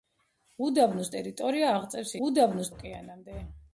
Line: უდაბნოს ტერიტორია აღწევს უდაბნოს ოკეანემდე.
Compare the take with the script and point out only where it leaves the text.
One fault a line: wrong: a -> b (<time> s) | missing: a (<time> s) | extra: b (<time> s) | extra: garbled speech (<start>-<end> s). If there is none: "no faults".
no faults